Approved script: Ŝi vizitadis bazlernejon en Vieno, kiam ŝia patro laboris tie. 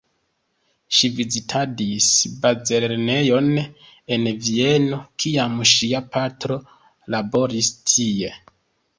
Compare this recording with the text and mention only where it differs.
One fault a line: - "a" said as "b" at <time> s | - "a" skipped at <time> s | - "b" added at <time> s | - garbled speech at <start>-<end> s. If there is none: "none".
none